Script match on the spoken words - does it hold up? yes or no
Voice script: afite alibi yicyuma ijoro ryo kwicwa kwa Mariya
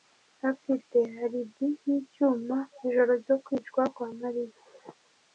yes